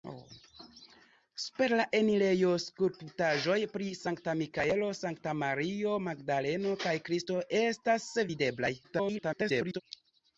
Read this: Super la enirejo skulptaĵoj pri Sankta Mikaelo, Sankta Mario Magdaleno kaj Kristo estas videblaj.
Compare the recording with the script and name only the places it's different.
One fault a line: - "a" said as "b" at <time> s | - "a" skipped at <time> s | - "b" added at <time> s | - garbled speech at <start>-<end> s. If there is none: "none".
- garbled speech at 8.8-9.8 s